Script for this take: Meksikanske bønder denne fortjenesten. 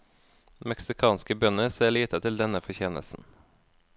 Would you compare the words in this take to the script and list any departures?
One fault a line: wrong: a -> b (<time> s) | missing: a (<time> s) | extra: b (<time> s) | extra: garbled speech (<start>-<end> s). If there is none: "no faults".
extra: ser lite til (1.7 s)